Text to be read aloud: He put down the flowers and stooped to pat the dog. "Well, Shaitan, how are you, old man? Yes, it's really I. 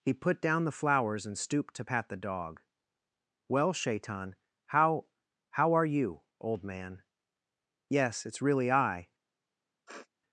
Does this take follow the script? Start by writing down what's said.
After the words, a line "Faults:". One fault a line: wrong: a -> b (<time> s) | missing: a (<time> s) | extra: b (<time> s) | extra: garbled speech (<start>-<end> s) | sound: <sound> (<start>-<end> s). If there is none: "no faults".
He put down the flowers and stooped to pat the dog. "Well, Shaitan, how how are you, old man? Yes, it's really I.
Faults:
extra: how (5.5 s)
sound: sniff (9.9-10.1 s)